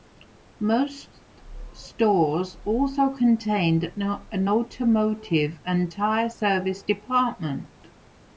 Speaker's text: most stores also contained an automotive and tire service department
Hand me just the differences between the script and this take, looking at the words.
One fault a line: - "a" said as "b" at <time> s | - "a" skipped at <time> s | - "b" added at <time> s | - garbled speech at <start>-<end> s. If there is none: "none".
none